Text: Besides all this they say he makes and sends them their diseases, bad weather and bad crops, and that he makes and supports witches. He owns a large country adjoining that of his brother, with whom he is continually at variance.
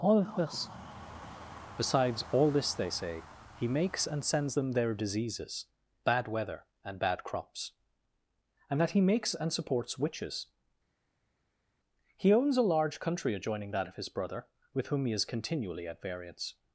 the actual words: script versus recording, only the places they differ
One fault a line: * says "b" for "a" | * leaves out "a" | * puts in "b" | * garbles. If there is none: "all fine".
* puts in "all of this"